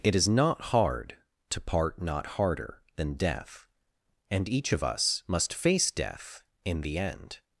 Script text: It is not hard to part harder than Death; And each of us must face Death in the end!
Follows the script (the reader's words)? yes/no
no